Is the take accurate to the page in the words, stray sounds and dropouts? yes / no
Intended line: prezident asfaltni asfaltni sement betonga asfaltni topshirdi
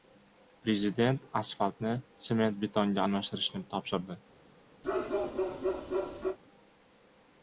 no